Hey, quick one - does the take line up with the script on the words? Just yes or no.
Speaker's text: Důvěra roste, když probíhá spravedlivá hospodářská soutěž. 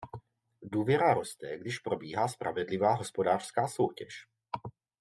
yes